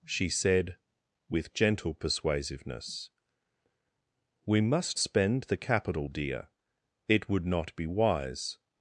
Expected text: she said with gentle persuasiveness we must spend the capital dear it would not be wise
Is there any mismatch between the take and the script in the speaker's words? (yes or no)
no